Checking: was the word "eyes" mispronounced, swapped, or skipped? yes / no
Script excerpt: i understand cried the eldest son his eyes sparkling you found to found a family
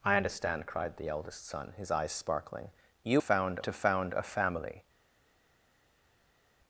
no